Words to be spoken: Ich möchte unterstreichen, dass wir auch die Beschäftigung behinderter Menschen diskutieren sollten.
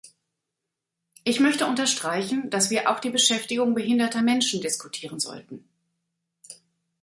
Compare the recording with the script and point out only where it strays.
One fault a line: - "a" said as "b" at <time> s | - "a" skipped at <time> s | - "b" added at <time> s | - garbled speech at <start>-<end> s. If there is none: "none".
none